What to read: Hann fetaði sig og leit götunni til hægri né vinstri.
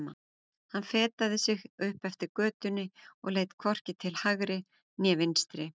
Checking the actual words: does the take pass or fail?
fail